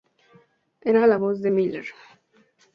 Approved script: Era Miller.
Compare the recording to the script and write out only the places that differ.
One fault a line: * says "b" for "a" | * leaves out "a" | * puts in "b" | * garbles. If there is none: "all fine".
* puts in "la voz de"